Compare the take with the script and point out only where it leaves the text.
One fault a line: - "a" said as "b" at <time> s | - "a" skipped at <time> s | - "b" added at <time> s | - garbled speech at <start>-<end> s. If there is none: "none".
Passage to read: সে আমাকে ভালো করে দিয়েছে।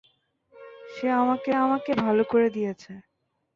- "আমাকে" added at 1.6 s